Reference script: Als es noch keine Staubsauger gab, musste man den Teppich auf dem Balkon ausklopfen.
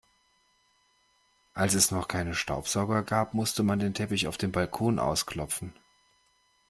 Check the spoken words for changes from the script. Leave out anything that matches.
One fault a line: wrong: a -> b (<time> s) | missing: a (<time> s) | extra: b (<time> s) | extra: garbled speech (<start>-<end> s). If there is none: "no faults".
no faults